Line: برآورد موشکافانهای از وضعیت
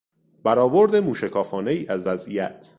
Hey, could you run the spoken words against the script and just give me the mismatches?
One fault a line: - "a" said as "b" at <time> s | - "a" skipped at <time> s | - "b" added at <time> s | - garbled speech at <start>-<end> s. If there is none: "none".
none